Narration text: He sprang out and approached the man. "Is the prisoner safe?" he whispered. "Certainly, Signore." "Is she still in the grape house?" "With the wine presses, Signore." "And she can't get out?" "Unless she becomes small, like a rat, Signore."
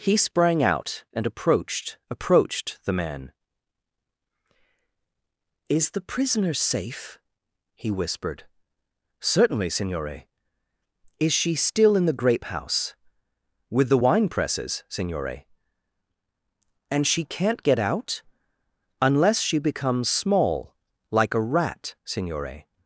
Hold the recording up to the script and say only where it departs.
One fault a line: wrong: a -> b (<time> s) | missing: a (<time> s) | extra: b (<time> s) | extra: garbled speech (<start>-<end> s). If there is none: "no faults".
extra: approached (2.1 s)